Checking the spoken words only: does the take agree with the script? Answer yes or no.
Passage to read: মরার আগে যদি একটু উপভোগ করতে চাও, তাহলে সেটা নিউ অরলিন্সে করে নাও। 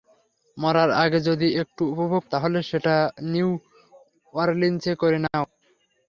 no